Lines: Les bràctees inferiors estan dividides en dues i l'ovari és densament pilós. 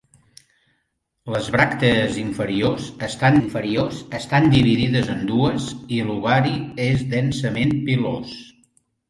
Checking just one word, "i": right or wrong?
right